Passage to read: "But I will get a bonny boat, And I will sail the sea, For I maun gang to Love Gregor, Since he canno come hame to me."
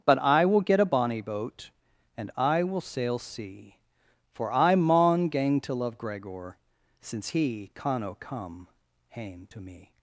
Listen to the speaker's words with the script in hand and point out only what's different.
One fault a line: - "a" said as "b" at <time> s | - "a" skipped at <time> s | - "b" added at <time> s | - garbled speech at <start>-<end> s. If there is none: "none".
- "the" skipped at 3.2 s